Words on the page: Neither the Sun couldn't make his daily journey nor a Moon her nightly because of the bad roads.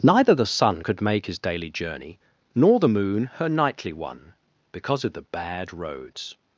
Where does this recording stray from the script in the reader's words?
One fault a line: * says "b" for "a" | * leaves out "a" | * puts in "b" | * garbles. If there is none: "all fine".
* says "could" for "couldn't"
* says "the" for "a"
* puts in "one"